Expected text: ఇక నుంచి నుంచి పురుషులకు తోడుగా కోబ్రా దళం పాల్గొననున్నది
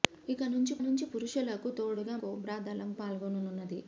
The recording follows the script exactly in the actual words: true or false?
true